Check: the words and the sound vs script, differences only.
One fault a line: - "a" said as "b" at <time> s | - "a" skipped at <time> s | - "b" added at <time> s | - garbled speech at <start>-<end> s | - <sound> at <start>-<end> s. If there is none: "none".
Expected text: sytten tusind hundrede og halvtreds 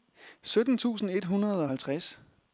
- "et" added at 1.1 s